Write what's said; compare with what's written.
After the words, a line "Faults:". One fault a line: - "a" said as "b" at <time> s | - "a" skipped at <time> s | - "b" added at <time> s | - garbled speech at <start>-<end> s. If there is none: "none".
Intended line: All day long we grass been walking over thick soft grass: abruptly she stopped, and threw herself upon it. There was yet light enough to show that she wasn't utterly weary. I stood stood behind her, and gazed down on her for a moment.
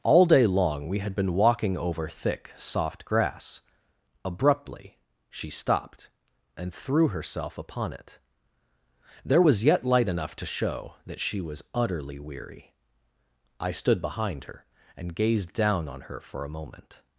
All day long we had been walking over thick soft grass: abruptly she stopped, and threw herself upon it. There was yet light enough to show that she was utterly weary. I stood behind her, and gazed down on her for a moment.
Faults:
- "grass" said as "had" at 1.0 s
- "wasn't" said as "was" at 11.4 s
- "stood" skipped at 14.0 s